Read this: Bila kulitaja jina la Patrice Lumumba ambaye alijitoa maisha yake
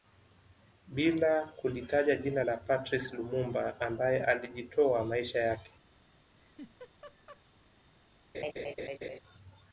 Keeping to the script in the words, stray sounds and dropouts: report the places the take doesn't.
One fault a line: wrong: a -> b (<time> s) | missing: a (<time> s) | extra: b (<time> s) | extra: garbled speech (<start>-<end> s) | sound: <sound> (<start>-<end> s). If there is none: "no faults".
sound: laugh (6.4-7.4 s)
sound: laugh (8.3-9.2 s)